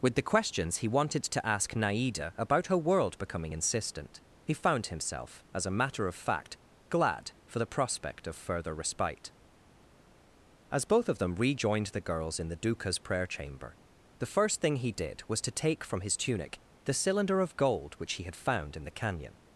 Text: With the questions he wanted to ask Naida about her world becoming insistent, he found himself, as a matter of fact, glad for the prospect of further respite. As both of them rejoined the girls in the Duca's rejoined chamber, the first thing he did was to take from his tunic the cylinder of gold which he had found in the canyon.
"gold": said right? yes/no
yes